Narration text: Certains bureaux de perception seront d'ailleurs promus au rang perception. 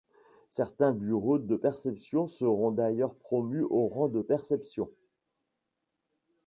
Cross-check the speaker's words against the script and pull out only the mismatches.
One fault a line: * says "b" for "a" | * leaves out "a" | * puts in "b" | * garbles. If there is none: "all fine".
* puts in "de"